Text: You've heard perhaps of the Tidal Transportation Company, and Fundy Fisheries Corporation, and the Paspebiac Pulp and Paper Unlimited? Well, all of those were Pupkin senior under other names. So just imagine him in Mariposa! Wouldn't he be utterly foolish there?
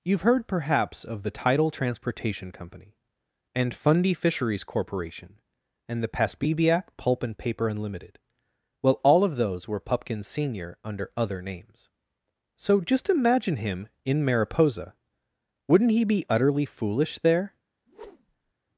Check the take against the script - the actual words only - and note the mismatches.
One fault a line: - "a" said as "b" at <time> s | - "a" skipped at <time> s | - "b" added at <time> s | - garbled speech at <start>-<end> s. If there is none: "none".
none